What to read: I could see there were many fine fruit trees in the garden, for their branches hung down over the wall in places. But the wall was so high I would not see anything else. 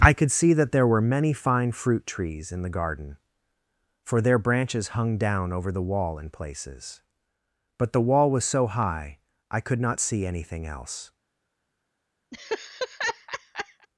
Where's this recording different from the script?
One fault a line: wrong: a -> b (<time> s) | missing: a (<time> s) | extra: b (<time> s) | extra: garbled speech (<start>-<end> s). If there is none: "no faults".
extra: that (0.5 s)
wrong: would -> could (9.6 s)